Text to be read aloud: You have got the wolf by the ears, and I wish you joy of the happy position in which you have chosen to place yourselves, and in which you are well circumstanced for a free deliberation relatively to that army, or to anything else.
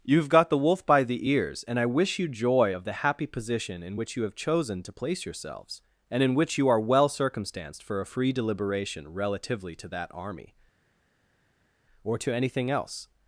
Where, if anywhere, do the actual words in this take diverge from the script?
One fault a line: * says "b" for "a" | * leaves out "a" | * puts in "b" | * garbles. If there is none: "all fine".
all fine